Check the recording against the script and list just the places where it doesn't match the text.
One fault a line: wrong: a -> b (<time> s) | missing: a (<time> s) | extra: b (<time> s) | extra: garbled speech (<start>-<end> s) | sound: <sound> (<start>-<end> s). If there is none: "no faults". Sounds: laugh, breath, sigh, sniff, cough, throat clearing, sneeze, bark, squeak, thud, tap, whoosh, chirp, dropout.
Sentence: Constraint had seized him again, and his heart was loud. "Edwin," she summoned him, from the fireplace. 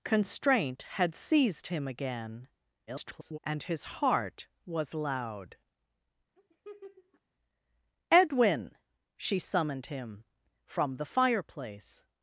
extra: garbled speech (2.9-3.4 s)
sound: laugh (6.4-7.2 s)